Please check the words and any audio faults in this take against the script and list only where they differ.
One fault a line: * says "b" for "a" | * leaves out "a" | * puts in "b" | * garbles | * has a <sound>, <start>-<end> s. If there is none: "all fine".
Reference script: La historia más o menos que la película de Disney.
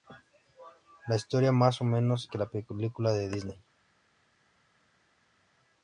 all fine